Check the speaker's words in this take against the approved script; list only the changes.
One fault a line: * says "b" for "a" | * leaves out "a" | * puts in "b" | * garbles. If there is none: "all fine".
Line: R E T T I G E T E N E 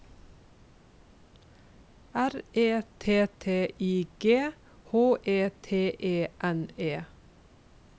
* puts in "H"